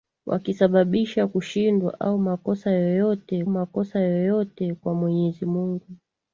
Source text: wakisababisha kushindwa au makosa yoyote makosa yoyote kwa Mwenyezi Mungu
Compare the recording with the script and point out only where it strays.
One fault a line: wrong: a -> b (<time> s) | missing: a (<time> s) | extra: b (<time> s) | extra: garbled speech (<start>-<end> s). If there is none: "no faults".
no faults